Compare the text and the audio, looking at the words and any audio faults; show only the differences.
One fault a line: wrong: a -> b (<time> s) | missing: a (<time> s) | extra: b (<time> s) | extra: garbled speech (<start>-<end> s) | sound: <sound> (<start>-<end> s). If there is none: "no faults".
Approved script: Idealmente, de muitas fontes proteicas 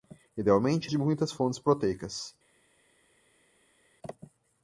no faults